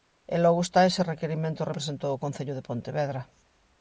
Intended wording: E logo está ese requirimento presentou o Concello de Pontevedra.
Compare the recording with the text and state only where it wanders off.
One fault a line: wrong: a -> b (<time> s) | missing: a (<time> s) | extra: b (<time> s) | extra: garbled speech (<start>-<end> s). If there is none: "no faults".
no faults